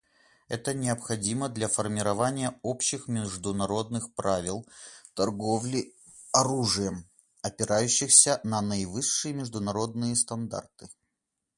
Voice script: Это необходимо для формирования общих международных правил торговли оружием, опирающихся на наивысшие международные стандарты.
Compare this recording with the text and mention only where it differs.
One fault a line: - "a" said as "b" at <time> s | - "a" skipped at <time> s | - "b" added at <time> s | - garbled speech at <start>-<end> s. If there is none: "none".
none